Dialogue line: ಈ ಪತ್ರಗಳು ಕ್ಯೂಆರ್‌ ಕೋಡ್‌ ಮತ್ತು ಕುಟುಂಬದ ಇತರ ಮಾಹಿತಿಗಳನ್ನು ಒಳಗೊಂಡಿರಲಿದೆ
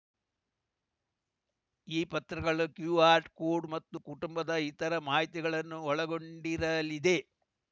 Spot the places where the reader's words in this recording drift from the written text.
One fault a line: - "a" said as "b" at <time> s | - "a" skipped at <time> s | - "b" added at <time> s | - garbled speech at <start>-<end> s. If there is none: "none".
none